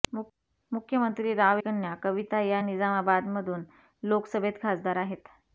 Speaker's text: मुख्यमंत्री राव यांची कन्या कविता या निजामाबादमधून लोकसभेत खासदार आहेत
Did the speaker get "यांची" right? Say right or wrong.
wrong